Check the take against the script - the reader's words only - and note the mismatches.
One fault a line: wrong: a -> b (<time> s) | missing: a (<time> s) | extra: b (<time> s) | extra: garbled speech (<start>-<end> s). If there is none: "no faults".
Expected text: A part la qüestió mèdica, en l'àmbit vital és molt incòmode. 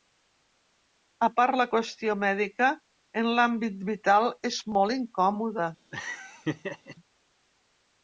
no faults